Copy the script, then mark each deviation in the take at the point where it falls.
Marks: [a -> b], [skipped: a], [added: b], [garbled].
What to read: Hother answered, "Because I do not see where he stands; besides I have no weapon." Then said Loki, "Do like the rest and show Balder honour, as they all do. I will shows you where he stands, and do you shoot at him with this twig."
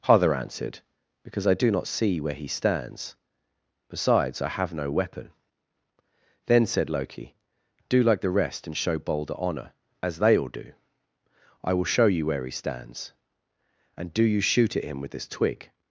Hother answered, "Because I do not see where he stands; besides I have no weapon." Then said Loki, "Do like the rest and show Balder honour, as they all do. I will [shows -> show] you where he stands, and do you shoot at him with this twig."